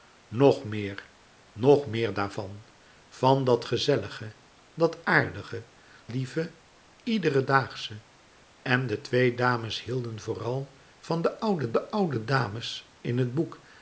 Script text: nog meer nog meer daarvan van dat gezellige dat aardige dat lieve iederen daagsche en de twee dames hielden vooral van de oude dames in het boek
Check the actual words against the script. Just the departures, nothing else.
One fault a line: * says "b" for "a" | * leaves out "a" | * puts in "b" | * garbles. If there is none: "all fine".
* leaves out "dat"
* puts in "de oude"